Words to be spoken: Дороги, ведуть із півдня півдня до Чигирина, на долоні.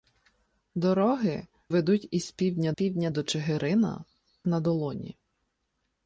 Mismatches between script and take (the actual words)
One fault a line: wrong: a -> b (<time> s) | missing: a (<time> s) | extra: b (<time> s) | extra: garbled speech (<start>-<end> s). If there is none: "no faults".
no faults